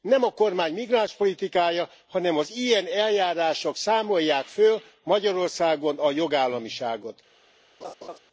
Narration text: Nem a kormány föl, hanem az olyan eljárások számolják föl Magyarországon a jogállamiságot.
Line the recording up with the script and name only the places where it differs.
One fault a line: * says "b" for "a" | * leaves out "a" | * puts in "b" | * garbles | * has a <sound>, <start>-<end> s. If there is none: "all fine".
* says "migránspolitikája" for "föl"
* says "ilyen" for "olyan"
* has a laugh, 7.8-8.2 s